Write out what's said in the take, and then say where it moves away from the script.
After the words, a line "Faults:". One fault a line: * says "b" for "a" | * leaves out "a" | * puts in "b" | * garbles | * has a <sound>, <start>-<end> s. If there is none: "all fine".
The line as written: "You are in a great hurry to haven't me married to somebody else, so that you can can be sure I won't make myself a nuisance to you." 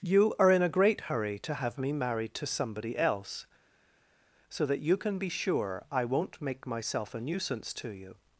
"You are in a great hurry to have me married to somebody else, so that you can be sure I won't make myself a nuisance to you."
Faults:
* says "have" for "haven't"
* leaves out "can"